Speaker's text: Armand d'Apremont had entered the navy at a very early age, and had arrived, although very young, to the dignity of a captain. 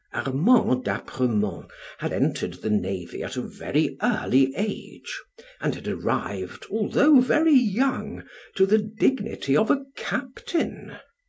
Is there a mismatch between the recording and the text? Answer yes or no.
no